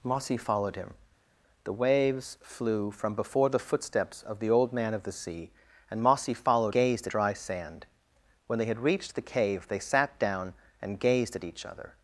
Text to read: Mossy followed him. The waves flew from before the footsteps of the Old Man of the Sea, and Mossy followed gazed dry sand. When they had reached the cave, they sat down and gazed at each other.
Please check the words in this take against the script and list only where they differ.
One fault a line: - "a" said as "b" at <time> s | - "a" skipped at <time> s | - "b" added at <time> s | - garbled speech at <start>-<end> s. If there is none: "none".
none